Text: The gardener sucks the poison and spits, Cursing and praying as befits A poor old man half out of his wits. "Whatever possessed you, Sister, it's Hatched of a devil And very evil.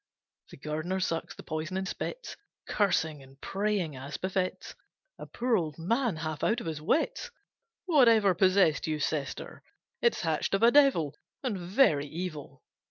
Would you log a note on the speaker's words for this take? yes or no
no